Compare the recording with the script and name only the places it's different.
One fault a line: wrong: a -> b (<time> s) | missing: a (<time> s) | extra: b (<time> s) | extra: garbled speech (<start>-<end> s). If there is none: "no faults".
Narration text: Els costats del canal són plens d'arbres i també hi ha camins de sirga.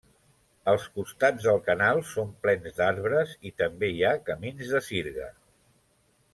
no faults